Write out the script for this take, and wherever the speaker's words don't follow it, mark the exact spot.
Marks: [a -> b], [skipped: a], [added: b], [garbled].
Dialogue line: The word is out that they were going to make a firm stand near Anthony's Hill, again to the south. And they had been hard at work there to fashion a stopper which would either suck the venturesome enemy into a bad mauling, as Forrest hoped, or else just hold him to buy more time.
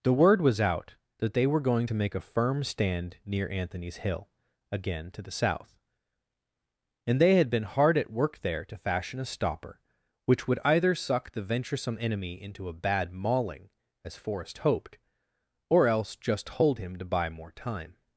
The word [is -> was] out that they were going to make a firm stand near Anthony's Hill, again to the south. And they had been hard at work there to fashion a stopper which would either suck the venturesome enemy into a bad mauling, as Forrest hoped, or else just hold him to buy more time.